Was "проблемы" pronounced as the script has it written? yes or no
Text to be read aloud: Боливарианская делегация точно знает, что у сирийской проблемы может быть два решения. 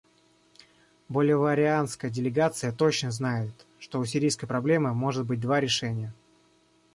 yes